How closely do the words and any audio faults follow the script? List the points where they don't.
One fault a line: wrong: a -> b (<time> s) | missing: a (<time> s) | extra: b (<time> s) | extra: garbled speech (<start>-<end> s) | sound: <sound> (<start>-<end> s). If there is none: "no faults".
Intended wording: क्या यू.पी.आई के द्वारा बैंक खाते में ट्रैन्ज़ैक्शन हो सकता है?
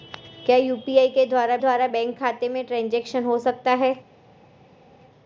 extra: द्वारा (1.6 s)